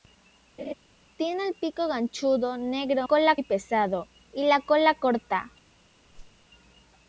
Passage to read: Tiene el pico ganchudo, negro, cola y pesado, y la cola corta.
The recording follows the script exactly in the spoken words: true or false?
true